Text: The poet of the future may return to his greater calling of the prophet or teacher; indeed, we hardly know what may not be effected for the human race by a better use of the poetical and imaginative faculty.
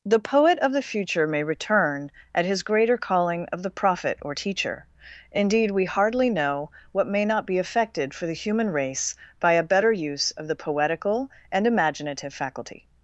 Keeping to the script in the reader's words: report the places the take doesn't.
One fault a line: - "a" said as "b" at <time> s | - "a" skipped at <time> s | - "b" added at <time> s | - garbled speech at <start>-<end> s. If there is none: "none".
- "to" said as "at" at 2.3 s